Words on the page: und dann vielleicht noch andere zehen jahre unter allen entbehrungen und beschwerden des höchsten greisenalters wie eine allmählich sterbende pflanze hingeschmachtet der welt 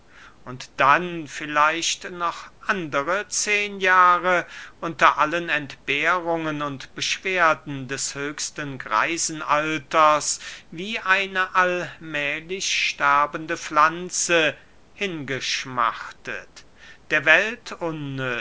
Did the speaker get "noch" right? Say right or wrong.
right